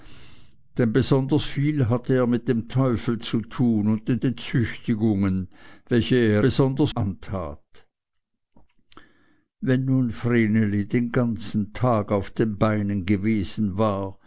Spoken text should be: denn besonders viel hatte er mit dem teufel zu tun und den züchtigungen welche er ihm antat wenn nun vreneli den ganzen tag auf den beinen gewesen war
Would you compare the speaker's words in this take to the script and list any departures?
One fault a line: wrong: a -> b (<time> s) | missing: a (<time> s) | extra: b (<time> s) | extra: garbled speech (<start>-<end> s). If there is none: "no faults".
extra: den (4.2 s)
wrong: ihm -> besonders (6.4 s)